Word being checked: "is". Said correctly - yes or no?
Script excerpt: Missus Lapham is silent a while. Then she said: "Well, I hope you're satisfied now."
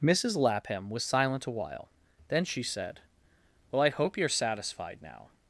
no